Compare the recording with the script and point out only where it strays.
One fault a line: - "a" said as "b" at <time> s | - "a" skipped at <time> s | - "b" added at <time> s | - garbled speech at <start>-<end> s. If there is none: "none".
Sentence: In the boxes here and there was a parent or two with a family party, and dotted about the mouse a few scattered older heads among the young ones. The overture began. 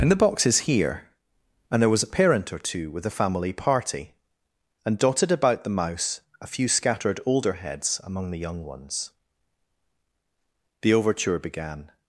none